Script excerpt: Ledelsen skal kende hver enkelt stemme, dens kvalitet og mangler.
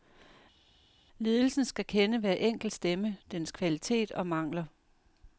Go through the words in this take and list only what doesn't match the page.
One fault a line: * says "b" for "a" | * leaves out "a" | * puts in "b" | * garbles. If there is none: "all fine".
all fine